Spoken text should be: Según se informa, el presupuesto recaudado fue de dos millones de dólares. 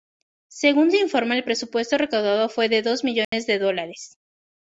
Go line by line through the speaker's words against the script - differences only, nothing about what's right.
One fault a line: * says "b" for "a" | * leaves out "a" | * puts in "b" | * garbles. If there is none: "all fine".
all fine